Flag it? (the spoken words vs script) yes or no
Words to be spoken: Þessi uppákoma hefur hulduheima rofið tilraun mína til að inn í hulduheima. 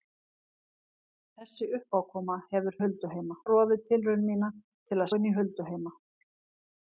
no